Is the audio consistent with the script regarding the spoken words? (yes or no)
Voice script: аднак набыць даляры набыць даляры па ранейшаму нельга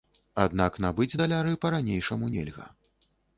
no